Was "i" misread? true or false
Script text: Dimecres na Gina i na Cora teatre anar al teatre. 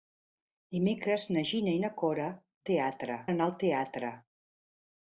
false